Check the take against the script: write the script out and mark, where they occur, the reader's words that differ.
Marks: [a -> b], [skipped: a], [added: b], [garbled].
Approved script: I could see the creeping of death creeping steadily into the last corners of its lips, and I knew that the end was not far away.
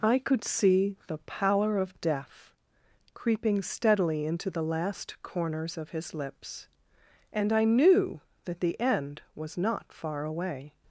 I could see the [creeping -> pallor] of death creeping steadily into the last corners of [its -> his] lips, and I knew that the end was not far away.